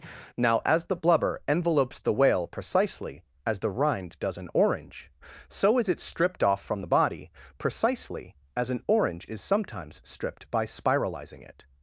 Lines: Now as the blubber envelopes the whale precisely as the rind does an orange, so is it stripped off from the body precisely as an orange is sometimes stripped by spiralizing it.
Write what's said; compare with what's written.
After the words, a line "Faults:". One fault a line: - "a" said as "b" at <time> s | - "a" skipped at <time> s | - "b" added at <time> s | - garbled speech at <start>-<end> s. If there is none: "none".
Now as the blubber envelopes the whale precisely as the rind does an orange, so is it stripped off from the body precisely as an orange is sometimes stripped by spiralizing it.
Faults:
none